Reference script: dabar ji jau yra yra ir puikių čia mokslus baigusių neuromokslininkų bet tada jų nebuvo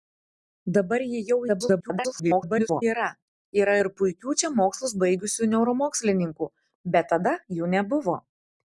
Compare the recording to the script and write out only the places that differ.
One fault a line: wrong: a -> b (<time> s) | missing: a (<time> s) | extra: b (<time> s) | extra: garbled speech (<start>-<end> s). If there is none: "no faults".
extra: garbled speech (1.5-2.8 s)